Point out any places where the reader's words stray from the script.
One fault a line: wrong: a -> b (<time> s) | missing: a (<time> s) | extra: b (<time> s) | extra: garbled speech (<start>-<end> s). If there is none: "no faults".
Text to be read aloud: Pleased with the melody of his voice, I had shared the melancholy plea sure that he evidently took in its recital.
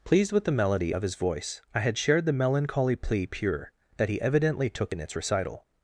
wrong: sure -> pure (3.3 s)